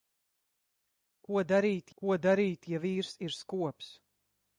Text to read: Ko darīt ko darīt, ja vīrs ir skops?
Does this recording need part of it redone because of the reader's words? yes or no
no